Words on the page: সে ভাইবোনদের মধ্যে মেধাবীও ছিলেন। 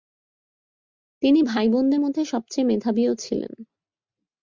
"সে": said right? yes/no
no